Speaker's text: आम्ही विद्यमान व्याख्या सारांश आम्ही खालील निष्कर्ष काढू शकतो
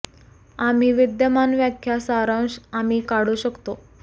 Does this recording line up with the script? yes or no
no